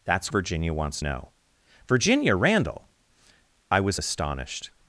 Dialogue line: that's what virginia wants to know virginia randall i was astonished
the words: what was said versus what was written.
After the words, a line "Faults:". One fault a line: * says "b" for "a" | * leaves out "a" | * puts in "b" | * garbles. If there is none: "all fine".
that's virginia wants know virginia randall i was astonished
Faults:
* leaves out "what"
* leaves out "to"